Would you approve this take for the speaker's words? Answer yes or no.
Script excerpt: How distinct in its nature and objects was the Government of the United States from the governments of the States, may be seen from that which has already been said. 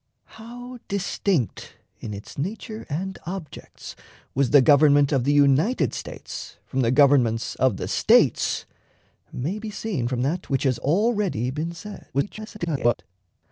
no